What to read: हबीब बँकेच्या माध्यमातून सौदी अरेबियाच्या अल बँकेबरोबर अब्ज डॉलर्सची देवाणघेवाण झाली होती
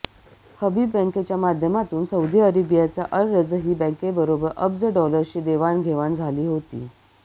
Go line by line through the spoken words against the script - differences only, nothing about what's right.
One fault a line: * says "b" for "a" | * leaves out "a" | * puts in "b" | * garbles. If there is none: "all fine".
* puts in "रजही"